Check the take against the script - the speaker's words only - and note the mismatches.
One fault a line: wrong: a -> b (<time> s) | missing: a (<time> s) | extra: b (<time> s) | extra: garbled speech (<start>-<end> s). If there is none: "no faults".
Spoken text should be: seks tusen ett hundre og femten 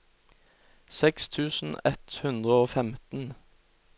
no faults